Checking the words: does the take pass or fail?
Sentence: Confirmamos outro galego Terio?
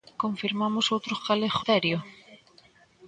pass